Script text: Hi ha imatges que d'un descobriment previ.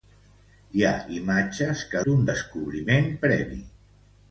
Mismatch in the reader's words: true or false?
false